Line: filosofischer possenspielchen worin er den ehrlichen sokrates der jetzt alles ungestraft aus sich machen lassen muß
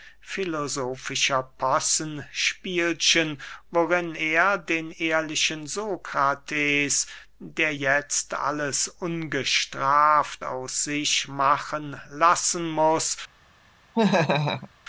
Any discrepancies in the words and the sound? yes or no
yes